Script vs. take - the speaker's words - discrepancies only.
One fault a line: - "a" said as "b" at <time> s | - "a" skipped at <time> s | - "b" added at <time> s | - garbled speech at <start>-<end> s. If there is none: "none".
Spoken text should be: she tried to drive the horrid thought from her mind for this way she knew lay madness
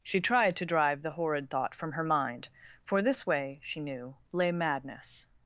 none